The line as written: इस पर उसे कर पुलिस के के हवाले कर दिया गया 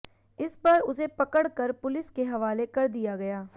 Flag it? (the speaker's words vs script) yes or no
yes